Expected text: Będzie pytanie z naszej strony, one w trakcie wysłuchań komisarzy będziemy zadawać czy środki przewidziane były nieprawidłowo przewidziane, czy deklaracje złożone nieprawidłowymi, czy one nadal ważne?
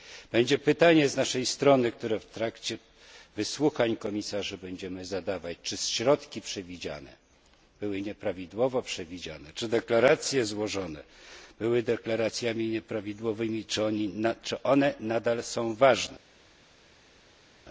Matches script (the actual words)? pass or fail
fail